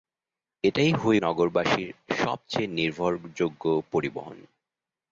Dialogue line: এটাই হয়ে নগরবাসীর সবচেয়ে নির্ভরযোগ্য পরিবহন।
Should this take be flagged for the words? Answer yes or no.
no